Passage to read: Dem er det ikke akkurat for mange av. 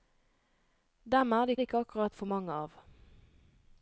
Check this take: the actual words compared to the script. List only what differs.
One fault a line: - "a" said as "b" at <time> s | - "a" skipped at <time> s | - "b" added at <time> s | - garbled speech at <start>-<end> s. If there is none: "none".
- "det" added at 1.6 s